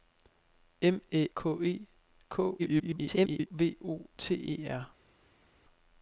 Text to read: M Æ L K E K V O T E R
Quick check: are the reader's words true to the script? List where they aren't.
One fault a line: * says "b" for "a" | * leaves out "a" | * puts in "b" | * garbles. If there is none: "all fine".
* leaves out "L"
* garbles